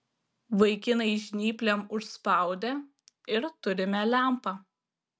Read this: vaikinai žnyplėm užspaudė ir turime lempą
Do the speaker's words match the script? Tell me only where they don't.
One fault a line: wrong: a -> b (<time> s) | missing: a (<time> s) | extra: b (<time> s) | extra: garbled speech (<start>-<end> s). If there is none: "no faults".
no faults